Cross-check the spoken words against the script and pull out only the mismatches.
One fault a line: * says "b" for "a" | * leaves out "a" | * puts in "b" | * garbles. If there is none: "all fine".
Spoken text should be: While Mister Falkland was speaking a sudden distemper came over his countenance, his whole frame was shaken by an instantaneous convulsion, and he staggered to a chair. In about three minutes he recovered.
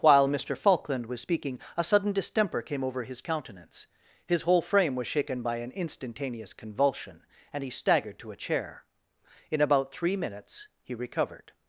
all fine